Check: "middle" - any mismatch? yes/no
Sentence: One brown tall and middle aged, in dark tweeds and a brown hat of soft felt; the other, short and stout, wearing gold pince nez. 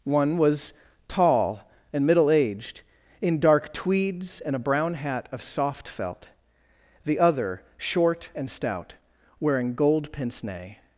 no